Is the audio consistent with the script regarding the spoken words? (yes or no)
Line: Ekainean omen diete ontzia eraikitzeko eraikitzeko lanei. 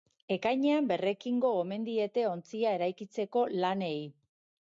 no